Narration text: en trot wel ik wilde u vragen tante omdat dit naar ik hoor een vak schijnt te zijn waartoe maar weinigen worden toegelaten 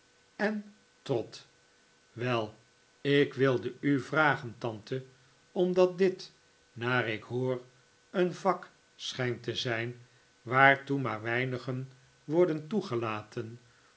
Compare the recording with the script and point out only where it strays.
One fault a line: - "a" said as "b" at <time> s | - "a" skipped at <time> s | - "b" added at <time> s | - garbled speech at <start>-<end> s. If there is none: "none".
none